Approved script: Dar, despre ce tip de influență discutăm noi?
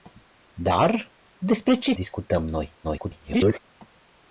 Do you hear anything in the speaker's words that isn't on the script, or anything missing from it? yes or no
yes